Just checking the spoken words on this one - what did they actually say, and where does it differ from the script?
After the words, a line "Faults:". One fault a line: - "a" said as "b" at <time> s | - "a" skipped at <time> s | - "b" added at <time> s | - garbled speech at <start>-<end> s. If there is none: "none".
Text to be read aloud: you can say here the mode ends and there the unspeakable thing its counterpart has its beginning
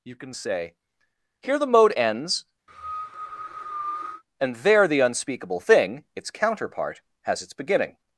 you can say here the mode ends and there the unspeakable thing its counterpart has its beginning
Faults:
none